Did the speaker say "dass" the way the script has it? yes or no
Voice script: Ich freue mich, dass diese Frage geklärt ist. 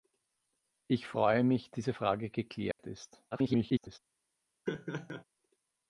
no